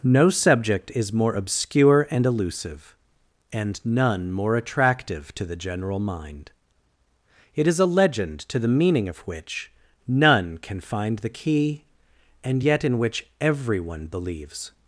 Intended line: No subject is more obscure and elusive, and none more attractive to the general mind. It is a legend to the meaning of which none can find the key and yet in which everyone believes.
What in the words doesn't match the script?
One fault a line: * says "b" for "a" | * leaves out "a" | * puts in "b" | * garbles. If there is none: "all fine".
all fine